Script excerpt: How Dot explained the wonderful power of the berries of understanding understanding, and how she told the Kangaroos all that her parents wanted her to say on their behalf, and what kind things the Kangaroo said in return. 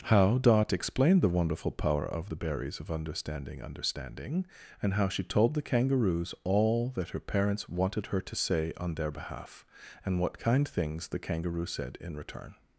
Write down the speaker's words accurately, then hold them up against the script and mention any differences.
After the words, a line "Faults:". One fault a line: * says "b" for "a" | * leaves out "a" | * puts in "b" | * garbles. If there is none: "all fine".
How Dot explained the wonderful power of the berries of understanding understanding, and how she told the Kangaroos all that her parents wanted her to say on their behalf, and what kind things the Kangaroo said in return.
Faults:
all fine